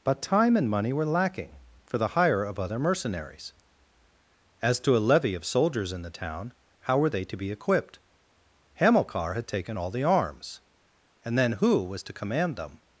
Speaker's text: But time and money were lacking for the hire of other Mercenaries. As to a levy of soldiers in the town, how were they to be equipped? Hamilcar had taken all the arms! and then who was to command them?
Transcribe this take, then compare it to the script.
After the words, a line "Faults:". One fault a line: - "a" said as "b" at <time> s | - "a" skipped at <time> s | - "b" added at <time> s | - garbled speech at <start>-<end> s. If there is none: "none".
But time and money were lacking for the hire of other Mercenaries. As to a levy of soldiers in the town, how were they to be equipped? Hamilcar had taken all the arms! and then who was to command them?
Faults:
none